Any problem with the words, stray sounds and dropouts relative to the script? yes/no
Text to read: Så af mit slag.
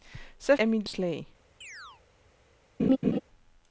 yes